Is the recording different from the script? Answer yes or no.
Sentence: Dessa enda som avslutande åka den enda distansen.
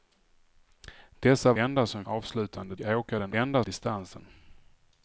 no